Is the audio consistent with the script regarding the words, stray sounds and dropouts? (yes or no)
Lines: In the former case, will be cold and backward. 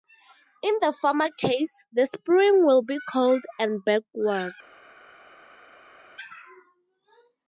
no